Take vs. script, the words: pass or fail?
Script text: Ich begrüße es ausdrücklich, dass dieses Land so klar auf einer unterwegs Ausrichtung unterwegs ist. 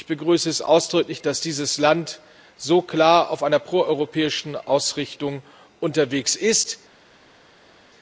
fail